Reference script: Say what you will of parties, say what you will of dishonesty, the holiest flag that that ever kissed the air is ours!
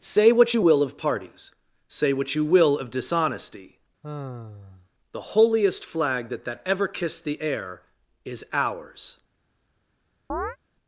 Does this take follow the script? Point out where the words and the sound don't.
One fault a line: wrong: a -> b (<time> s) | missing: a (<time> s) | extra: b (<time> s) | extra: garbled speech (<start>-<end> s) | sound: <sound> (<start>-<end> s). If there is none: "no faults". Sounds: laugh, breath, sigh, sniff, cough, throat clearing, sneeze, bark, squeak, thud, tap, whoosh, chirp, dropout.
sound: sigh (4.0-4.9 s)
sound: chirp (10.3-10.6 s)